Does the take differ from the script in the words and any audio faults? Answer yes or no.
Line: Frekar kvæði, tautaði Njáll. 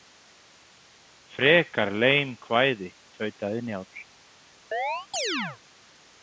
yes